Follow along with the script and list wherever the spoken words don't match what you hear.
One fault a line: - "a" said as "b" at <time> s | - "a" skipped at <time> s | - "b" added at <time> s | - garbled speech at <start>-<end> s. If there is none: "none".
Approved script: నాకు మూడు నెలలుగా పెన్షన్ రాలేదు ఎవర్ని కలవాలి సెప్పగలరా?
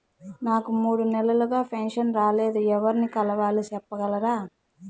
none